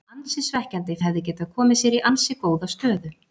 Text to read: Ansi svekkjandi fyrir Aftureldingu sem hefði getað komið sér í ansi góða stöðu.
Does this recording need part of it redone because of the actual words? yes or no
yes